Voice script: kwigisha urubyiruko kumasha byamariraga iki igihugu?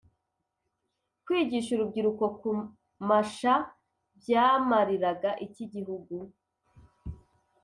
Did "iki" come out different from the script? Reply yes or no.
no